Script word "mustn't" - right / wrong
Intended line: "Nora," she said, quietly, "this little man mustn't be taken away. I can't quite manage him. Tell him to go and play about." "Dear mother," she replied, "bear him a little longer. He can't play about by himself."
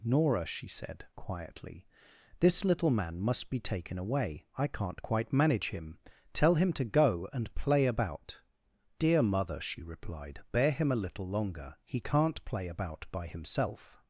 wrong